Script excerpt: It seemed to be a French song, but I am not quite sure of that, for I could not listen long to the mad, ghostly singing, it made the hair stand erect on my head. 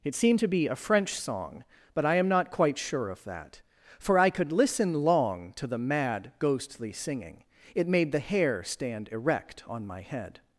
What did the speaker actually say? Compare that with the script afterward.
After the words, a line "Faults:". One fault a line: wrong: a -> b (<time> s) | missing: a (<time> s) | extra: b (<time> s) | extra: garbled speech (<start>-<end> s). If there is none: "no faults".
It seemed to be a French song, but I am not quite sure of that, for I could listen long to the mad, ghostly singing, it made the hair stand erect on my head.
Faults:
missing: not (4.5 s)